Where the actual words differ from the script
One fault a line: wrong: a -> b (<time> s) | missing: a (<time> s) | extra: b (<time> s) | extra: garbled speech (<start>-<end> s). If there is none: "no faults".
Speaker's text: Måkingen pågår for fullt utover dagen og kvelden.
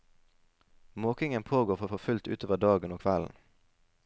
extra: for (1.8 s)